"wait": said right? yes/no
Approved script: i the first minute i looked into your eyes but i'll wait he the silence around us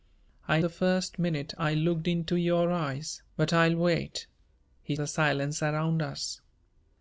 yes